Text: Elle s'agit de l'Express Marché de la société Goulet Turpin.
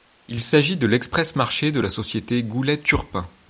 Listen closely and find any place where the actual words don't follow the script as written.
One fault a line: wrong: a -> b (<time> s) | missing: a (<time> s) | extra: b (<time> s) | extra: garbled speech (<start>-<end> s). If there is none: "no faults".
wrong: Elle -> Il (0.3 s)